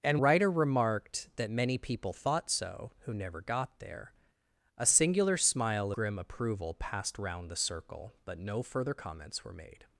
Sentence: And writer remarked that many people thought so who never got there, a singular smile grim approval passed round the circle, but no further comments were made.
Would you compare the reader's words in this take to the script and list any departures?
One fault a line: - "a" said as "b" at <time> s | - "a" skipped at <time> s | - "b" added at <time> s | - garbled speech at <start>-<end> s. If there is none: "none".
none